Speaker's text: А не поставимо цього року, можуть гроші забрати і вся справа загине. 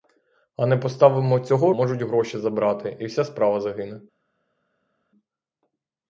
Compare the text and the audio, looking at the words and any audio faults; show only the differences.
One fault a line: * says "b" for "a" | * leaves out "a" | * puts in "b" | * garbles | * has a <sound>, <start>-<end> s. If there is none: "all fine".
* leaves out "року"